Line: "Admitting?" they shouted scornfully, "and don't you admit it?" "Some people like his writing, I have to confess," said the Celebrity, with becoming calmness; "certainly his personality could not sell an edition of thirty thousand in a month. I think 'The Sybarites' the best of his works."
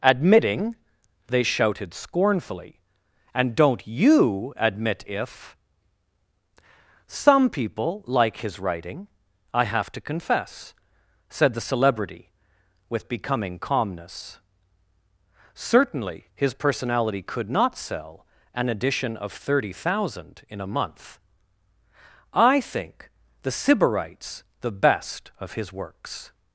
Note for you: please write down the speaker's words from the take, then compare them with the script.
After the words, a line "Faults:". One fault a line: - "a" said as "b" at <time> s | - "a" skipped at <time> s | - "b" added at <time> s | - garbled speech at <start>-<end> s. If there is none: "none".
"Admitting?" they shouted scornfully, "and don't you admit if?" "Some people like his writing, I have to confess," said the Celebrity, with becoming calmness; "certainly his personality could not sell an edition of thirty thousand in a month. I think 'The Sybarites' the best of his works."
Faults:
- "it" said as "if" at 5.0 s